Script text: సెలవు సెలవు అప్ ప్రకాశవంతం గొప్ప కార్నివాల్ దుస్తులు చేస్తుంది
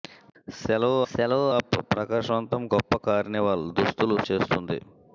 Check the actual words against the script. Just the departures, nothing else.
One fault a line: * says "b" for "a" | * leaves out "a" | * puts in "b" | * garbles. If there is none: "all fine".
all fine